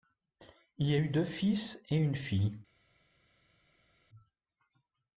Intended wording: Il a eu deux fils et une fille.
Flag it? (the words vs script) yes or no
no